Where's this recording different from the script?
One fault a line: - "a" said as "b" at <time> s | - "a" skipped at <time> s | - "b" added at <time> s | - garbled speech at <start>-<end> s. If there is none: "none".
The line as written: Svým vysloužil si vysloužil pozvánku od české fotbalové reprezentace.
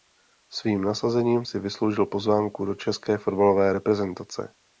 - "vysloužil" said as "nasazením" at 0.8 s
- "od" said as "do" at 2.6 s